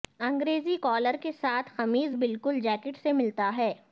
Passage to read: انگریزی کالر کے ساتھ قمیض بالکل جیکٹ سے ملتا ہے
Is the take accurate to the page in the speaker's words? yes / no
yes